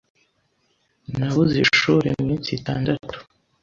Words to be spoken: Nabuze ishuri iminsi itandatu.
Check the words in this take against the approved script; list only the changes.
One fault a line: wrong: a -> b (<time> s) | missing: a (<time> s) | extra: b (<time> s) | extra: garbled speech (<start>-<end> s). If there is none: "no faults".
no faults